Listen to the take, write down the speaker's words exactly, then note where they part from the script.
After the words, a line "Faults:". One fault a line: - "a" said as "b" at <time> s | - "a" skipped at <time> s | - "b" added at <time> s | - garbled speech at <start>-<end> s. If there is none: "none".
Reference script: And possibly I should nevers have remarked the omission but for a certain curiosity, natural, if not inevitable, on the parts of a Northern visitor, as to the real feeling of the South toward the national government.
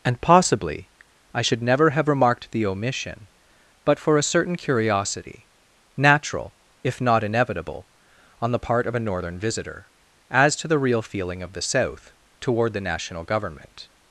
And possibly I should never have remarked the omission but for a certain curiosity, natural, if not inevitable, on the part of a Northern visitor, as to the real feeling of the South toward the national government.
Faults:
- "nevers" said as "never" at 1.6 s
- "parts" said as "part" at 8.6 s